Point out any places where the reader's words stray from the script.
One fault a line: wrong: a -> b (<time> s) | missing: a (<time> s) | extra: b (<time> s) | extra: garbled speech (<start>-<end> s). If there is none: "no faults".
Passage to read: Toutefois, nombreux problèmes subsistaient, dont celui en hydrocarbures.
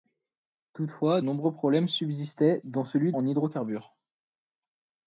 no faults